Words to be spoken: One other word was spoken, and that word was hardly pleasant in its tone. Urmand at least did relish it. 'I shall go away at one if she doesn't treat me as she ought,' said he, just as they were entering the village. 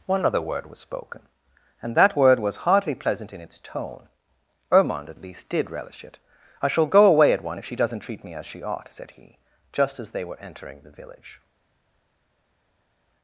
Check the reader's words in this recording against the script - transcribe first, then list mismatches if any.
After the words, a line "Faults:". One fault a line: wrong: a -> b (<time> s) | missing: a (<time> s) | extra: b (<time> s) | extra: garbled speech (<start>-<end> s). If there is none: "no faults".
One other word was spoken, and that word was hardly pleasant in its tone. Urmand at least did relish it. 'I shall go away at one if she doesn't treat me as she ought,' said he, just as they were entering the village.
Faults:
no faults